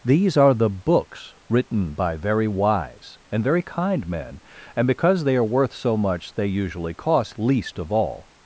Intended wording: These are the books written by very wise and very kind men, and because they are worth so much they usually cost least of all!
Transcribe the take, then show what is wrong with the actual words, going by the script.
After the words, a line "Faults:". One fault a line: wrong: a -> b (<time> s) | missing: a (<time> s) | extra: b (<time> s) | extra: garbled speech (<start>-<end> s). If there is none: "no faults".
These are the books written by very wise and very kind men, and because they are worth so much they usually cost least of all!
Faults:
no faults